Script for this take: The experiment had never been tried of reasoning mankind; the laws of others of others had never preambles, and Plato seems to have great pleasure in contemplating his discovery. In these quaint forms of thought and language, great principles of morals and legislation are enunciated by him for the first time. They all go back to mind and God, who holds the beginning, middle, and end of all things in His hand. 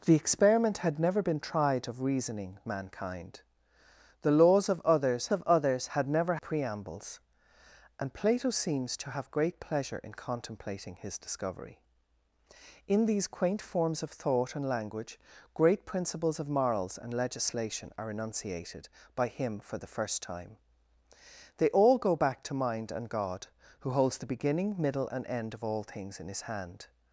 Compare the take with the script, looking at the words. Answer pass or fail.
pass